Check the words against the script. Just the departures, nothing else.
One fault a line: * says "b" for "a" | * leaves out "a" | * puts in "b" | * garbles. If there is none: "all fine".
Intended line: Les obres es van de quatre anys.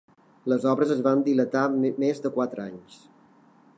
* puts in "dilatar més"